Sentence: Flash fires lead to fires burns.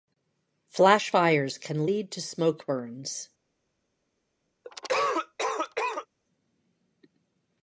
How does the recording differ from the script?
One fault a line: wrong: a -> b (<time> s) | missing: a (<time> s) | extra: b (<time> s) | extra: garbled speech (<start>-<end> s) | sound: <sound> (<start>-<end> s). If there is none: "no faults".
extra: can (1.6 s)
wrong: fires -> smoke (2.2 s)
sound: cough (4.6-6.1 s)